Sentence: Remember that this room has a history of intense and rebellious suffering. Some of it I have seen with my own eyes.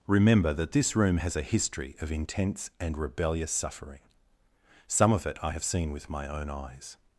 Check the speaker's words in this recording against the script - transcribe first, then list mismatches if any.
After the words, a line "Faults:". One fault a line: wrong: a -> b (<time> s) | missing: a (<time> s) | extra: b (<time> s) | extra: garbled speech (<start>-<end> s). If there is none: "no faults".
Remember that this room has a history of intense and rebellious suffering. Some of it I have seen with my own eyes.
Faults:
no faults